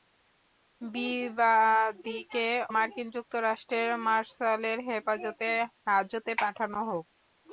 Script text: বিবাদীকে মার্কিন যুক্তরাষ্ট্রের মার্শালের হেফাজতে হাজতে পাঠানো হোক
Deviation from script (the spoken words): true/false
false